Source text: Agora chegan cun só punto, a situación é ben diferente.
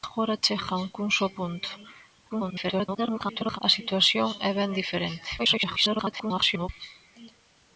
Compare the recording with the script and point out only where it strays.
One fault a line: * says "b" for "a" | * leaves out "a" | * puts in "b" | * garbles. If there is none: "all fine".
* garbles
* garbles